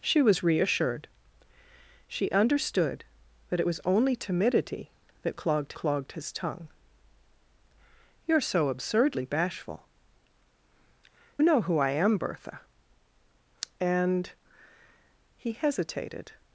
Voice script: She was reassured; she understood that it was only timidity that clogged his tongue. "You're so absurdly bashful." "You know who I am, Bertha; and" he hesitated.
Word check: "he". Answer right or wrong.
right